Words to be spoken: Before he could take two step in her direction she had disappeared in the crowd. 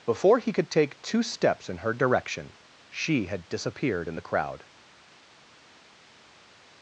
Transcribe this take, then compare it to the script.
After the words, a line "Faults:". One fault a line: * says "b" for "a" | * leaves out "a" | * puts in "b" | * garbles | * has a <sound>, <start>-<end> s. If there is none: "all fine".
Before he could take two steps in her direction she had disappeared in the crowd.
Faults:
* says "steps" for "step"